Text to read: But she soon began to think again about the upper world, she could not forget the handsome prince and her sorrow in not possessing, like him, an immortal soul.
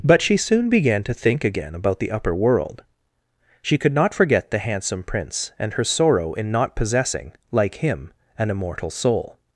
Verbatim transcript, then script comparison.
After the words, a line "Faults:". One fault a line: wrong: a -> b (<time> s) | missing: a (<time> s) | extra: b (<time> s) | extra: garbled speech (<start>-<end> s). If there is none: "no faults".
But she soon began to think again about the upper world, she could not forget the handsome prince and her sorrow in not possessing, like him, an immortal soul.
Faults:
no faults